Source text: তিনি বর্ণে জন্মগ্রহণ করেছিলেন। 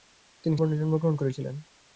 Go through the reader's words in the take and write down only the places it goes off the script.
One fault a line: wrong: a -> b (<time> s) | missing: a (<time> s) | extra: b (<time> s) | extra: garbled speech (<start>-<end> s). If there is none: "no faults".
no faults